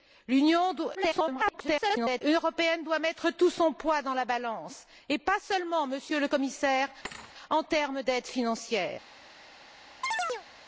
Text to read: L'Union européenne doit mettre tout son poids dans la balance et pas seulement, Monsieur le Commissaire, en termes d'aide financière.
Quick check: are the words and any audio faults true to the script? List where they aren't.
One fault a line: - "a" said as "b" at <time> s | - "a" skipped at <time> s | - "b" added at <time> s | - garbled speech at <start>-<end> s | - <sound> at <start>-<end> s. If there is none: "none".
- garbled speech at 0.9-2.2 s
- thud at 7.0-7.3 s
- chirp at 10.0-10.5 s